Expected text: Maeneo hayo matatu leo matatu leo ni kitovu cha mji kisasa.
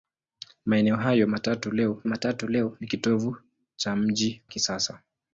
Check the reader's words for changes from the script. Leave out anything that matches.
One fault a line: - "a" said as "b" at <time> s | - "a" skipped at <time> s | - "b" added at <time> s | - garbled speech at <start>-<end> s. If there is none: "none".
none